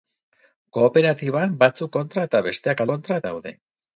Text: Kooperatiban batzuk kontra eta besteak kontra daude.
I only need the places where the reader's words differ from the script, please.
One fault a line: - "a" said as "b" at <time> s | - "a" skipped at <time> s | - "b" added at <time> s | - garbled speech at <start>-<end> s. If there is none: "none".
none